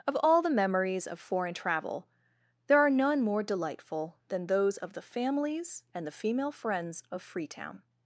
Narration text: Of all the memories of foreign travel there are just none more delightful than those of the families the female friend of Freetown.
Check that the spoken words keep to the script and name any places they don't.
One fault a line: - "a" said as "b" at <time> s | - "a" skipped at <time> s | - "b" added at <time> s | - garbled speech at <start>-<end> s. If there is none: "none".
- "just" skipped at 2.9 s
- "and" added at 5.9 s
- "friend" said as "friends" at 6.5 s